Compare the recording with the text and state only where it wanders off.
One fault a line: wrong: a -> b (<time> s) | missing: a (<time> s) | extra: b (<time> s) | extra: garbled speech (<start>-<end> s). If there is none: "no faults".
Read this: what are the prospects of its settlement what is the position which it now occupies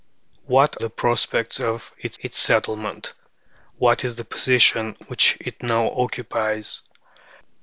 missing: are (0.8 s)
extra: its (2.2 s)